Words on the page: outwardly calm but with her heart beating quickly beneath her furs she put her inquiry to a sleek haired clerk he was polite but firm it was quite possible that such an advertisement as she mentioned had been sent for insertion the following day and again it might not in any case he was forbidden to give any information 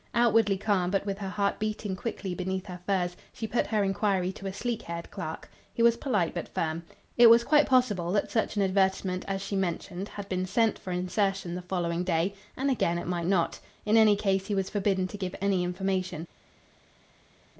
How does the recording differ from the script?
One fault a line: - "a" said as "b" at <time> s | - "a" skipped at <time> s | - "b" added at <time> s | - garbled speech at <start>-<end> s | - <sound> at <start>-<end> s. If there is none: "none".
none